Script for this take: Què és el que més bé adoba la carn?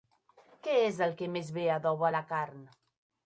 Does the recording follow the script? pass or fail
pass